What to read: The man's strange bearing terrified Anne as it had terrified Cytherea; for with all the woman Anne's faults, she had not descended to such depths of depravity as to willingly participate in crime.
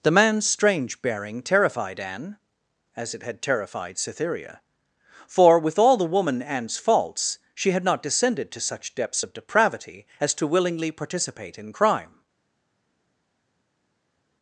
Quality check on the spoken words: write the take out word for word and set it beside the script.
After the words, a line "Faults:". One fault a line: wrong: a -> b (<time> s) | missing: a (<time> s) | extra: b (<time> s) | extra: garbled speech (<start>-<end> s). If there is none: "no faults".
The man's strange bearing terrified Anne as it had terrified Cytherea; for with all the woman Anne's faults, she had not descended to such depths of depravity as to willingly participate in crime.
Faults:
no faults